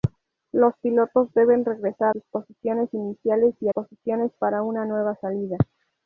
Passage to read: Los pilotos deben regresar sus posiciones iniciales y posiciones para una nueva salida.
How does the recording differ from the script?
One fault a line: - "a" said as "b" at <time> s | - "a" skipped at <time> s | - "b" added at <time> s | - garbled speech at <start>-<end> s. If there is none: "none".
none